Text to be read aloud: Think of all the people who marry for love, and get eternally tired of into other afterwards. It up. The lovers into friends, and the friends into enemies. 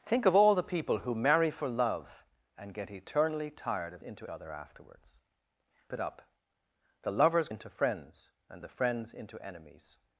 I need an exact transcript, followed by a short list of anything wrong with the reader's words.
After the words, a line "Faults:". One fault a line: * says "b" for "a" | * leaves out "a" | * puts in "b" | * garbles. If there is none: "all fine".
Think of all the people who marry for love, and get eternally tired of into other afterwards. It up. The lovers into friends, and the friends into enemies.
Faults:
all fine